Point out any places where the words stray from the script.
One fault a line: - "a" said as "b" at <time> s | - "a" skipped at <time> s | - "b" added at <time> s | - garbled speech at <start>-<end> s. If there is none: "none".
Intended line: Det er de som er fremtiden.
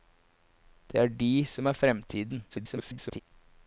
- garbled speech at 2.5-3.2 s